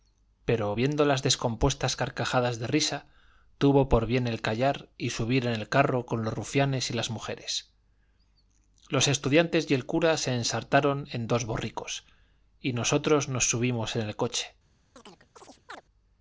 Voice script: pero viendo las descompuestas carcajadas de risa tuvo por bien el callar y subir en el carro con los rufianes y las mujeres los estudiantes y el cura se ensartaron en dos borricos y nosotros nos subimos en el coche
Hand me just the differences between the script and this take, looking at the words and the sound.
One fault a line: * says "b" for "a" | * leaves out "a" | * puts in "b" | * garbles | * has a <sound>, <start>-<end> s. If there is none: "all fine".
* has a chirp, 15.0-15.8 s